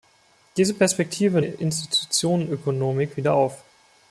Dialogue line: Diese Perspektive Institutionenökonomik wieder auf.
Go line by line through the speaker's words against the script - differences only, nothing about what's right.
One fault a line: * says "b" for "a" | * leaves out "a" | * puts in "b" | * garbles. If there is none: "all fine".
all fine